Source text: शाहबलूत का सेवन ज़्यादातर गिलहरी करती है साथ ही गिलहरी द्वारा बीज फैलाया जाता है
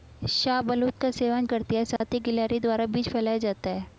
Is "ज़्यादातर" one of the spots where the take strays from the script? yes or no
yes